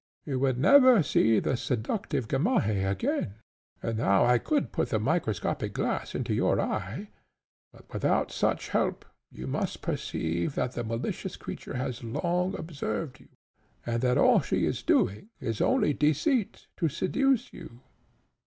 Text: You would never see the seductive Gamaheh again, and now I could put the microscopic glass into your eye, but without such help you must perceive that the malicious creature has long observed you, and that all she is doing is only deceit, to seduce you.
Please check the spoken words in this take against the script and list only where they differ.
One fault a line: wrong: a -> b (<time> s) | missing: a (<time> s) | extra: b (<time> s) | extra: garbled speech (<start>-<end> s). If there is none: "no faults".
no faults